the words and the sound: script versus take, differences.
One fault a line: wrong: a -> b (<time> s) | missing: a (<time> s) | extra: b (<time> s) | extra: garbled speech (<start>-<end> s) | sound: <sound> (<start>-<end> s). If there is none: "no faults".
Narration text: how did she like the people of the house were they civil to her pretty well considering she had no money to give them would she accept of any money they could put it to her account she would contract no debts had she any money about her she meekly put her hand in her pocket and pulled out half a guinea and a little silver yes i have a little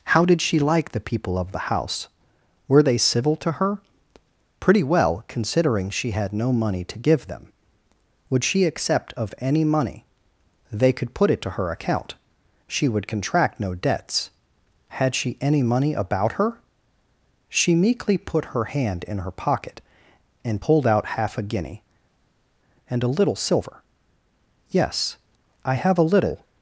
no faults